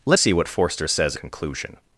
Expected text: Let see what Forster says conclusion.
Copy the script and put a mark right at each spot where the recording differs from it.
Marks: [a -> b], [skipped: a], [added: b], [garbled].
Let see what Forster says conclusion.